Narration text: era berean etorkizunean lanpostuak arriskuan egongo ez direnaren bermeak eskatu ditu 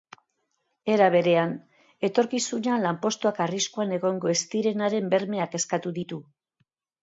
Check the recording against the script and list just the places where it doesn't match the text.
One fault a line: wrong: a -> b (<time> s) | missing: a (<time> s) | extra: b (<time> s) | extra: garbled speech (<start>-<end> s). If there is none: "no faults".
no faults